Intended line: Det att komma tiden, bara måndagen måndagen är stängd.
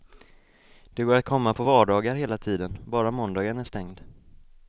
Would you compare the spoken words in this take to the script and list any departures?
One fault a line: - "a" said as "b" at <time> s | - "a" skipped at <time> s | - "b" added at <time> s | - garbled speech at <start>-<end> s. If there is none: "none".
- "går" added at 1.0 s
- "på vardagar hela" added at 1.5 s
- "måndagen" skipped at 3.6 s